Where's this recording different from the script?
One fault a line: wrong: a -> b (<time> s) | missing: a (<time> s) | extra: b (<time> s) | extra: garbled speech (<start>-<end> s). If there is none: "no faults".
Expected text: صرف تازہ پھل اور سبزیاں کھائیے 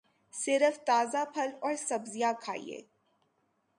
no faults